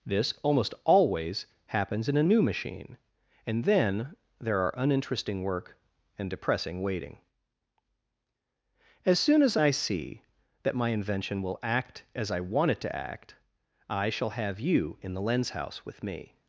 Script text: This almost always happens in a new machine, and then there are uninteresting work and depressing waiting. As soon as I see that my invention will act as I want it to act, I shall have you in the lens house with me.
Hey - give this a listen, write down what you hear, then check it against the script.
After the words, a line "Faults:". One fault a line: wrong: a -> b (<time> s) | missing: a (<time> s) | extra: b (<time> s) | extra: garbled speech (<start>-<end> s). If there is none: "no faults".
This almost always happens in a new machine, and then there are uninteresting work and depressing waiting. As soon as I see that my invention will act as I want it to act, I shall have you in the lens house with me.
Faults:
no faults